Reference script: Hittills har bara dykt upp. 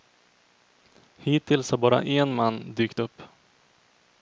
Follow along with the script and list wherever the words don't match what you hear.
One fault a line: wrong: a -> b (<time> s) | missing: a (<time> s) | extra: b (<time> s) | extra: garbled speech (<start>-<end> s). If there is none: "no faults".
extra: en man (2.0 s)